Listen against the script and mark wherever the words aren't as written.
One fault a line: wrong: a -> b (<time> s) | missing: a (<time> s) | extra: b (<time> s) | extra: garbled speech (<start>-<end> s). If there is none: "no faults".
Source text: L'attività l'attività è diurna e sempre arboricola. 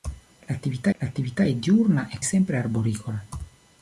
no faults